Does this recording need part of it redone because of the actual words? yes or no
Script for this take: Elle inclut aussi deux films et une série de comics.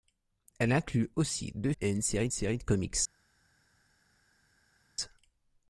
yes